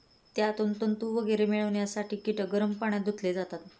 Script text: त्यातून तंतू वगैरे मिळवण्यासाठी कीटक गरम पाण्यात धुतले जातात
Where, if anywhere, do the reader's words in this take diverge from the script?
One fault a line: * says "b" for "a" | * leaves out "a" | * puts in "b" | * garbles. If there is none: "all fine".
all fine